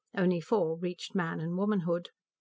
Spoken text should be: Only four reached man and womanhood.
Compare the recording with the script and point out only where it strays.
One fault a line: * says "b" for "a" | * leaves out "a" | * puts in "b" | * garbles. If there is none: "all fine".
all fine